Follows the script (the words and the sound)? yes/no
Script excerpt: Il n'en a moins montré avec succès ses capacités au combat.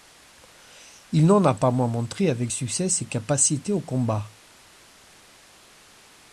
no